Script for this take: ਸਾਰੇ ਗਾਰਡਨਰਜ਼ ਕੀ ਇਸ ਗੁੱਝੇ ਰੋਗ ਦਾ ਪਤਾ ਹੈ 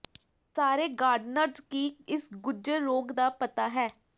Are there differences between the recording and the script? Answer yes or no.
no